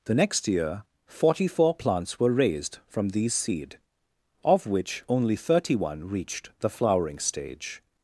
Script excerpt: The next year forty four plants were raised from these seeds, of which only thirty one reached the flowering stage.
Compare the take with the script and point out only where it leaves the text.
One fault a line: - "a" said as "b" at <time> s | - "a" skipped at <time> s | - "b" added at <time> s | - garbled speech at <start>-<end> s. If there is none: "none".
- "seeds" said as "seed" at 3.3 s